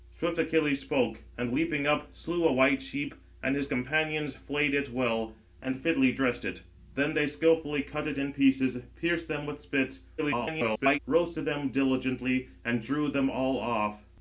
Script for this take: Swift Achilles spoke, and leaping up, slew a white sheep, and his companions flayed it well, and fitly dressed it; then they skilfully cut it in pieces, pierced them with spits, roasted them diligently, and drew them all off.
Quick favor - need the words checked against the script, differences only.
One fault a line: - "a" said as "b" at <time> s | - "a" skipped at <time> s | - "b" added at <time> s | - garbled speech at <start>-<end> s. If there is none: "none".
- garbled speech at 10.2-11.0 s